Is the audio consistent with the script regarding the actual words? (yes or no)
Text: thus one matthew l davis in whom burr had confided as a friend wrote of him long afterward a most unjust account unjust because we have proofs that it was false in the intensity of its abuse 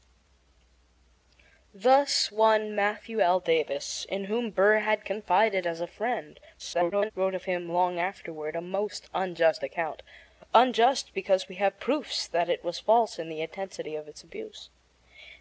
no